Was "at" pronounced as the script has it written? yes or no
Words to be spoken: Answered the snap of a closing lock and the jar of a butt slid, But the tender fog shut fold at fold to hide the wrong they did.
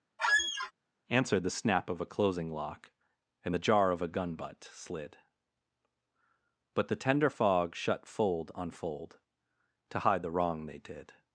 no